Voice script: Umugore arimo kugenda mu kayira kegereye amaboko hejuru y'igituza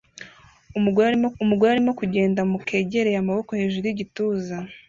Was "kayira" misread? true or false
true